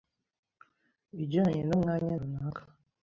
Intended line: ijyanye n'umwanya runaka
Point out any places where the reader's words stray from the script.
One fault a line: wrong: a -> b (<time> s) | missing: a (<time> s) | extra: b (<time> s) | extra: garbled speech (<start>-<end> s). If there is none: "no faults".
no faults